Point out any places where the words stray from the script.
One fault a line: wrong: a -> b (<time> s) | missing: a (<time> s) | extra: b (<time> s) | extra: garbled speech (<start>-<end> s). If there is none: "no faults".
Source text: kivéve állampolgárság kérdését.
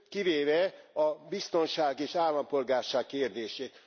extra: a biztonság és (0.9 s)